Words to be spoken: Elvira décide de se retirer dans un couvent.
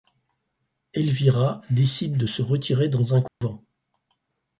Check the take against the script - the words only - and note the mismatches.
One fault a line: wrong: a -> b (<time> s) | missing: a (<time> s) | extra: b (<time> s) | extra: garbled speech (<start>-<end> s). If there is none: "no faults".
no faults